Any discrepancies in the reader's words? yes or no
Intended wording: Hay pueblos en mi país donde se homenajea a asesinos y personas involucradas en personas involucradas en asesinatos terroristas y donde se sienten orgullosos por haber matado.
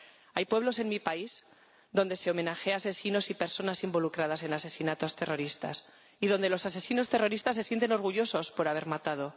yes